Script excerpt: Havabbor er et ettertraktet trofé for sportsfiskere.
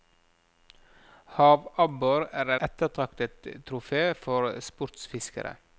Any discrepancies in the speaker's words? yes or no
yes